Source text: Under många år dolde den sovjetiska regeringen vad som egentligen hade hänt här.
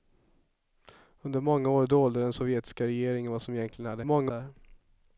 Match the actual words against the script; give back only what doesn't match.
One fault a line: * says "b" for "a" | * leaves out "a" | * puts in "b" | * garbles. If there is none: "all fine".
* says "många" for "hänt"